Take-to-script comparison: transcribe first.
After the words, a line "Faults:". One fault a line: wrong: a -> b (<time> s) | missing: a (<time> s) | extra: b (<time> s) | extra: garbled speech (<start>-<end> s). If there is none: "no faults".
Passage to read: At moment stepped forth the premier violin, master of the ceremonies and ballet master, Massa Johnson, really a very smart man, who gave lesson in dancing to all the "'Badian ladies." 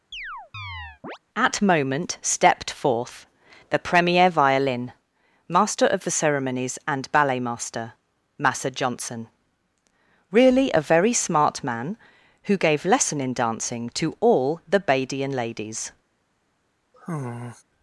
At moment stepped forth the premier violin, master of the ceremonies and ballet master, Massa Johnson, really a very smart man, who gave lesson in dancing to all the "'Badian ladies."
Faults:
no faults